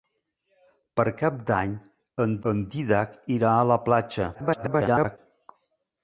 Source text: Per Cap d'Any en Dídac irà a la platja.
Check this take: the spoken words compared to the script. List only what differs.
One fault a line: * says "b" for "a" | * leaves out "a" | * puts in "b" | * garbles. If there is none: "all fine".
* puts in "en"
* garbles